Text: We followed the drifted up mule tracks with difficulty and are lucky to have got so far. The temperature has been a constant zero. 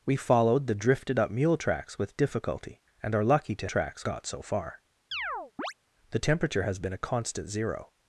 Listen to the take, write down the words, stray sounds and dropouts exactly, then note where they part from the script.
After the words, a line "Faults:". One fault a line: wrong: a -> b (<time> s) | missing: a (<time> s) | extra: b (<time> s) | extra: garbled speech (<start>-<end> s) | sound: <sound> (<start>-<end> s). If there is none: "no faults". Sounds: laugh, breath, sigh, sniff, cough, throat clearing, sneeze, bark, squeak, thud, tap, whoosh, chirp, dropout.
We followed the drifted up mule tracks with difficulty and are lucky to tracks got so far. The temperature has been a constant zero.
Faults:
wrong: have -> tracks (3.7 s)
sound: chirp (5.1-5.7 s)